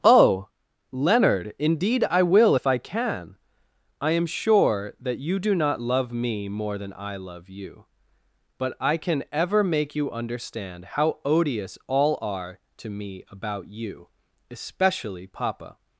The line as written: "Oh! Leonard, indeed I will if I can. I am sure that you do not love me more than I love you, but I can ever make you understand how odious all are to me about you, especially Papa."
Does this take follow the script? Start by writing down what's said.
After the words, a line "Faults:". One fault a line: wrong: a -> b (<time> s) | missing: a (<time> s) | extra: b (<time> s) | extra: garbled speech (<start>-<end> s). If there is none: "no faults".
"Oh! Leonard, indeed I will if I can. I am sure that you do not love me more than I love you, but I can ever make you understand how odious all are to me about you, especially Papa."
Faults:
no faults